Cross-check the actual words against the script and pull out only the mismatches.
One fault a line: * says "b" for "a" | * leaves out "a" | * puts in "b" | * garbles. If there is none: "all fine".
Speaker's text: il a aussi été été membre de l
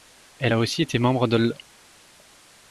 * says "elle" for "il"
* leaves out "été"